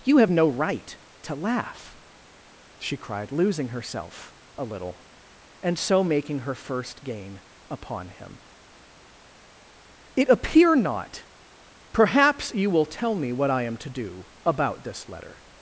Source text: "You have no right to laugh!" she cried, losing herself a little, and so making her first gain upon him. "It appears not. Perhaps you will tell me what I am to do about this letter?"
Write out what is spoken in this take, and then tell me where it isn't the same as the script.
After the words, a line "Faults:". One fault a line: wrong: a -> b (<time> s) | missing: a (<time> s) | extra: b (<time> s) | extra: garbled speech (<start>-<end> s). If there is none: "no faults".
"You have no right to laugh!" she cried, losing herself a little, and so making her first gain upon him. "It appear not. Perhaps you will tell me what I am to do about this letter?"
Faults:
wrong: appears -> appear (10.3 s)